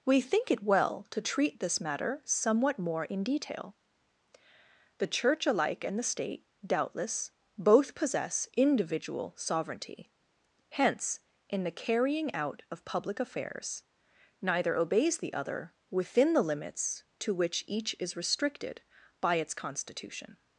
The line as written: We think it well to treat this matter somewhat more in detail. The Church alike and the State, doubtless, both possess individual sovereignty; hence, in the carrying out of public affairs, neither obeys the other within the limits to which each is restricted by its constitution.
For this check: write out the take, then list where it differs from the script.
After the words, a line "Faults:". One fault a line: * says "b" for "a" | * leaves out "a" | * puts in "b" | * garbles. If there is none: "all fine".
We think it well to treat this matter somewhat more in detail. The Church alike and the State, doubtless, both possess individual sovereignty; hence, in the carrying out of public affairs, neither obeys the other within the limits to which each is restricted by its constitution.
Faults:
all fine